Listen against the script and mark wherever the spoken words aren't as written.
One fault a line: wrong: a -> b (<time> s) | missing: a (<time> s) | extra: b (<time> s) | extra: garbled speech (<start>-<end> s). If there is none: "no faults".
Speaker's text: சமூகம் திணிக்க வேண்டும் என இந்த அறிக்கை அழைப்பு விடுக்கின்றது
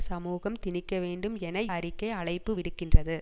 missing: இந்த (1.6 s)